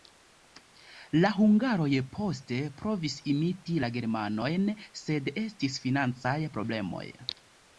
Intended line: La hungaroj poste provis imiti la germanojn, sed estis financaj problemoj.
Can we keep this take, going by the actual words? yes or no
yes